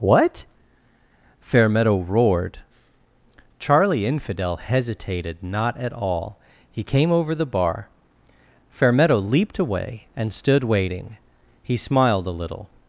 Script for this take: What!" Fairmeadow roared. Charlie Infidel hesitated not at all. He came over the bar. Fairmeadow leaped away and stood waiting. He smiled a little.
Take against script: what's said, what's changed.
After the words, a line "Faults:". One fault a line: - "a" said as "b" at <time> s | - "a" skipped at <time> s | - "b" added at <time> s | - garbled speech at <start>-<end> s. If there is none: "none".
What!" Fairmeadow roared. Charlie Infidel hesitated not at all. He came over the bar. Fairmeadow leaped away and stood waiting. He smiled a little.
Faults:
none